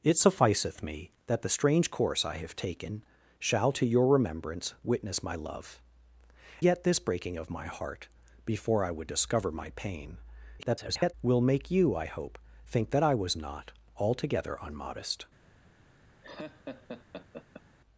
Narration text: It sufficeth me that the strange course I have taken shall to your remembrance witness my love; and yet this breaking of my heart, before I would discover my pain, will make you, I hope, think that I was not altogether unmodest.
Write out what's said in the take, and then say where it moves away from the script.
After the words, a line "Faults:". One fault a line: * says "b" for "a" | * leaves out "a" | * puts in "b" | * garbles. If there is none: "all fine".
It sufficeth me that the strange course I have taken shall to your remembrance witness my love; yet this breaking of my heart, before I would discover my pain, [garbled] will make you, I hope, think that I was not altogether unmodest.
Faults:
* leaves out "and"
* garbles